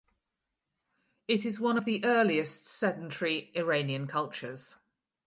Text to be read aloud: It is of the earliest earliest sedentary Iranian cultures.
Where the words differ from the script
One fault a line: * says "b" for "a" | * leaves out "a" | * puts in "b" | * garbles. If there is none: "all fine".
* puts in "one"
* leaves out "earliest"